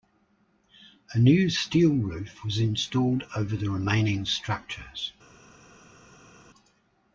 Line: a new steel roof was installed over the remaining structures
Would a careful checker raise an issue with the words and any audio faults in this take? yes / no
no